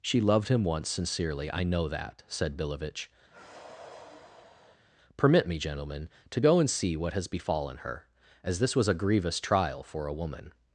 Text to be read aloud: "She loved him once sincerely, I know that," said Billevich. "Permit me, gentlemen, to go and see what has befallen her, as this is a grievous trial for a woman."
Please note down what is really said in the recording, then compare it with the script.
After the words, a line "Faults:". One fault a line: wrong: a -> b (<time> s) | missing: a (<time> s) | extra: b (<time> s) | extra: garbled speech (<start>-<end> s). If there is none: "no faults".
"She loved him once sincerely, I know that," said Billevich. "Permit me, gentlemen, to go and see what has befallen her, as this was a grievous trial for a woman."
Faults:
wrong: is -> was (8.7 s)